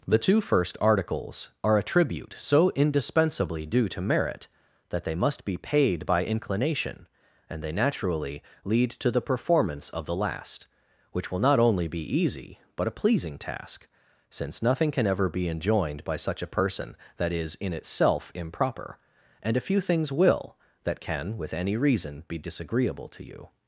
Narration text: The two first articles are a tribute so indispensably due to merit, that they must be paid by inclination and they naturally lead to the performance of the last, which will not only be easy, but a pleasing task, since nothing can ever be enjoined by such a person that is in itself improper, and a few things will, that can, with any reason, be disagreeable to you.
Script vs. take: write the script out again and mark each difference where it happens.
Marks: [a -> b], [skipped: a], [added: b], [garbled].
The two first articles are a tribute so indispensably due to merit, that they must be paid by inclination and they naturally lead to the performance of the last, which will not only be easy, but a pleasing task, since nothing can ever be enjoined by such a person that is in itself improper, and a few things will, that can, with any reason, be disagreeable to you.